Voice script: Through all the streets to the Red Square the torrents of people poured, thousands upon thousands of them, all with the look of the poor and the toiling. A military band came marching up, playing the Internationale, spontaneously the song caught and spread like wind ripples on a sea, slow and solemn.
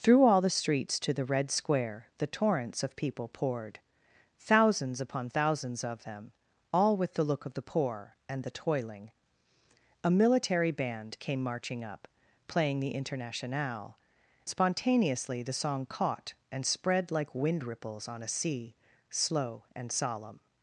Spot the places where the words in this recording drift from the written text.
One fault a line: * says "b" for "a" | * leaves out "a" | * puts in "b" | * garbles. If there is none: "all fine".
all fine